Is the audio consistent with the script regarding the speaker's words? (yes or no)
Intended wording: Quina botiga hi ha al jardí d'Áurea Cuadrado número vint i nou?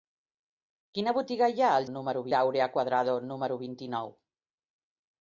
no